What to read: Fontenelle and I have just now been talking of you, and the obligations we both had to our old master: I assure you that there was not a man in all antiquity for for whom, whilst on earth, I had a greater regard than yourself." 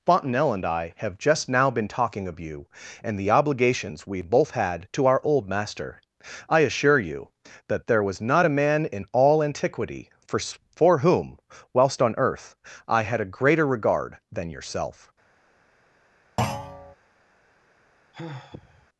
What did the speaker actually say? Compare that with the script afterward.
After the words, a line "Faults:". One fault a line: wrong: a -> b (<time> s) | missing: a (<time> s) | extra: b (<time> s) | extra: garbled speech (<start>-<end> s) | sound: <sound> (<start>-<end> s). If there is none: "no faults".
Fontenelle and I have just now been talking of you, and the obligations we both had to our old master: I assure you that there was not a man in all antiquity for for whom, whilst on earth, I had a greater regard than yourself."
Faults:
sound: thud (16.4-17.0 s)
sound: sigh (18.1-18.9 s)